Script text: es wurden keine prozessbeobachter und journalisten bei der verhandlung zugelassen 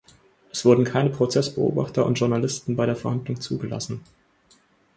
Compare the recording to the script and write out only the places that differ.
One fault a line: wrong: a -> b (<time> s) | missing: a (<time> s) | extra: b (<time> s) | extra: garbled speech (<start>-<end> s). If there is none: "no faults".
no faults